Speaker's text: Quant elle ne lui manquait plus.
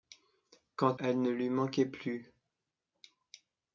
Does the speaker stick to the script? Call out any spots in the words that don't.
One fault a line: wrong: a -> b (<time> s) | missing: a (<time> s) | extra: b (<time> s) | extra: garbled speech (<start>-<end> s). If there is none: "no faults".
no faults